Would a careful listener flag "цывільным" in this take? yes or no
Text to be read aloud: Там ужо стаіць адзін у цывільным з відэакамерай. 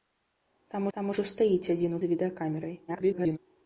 yes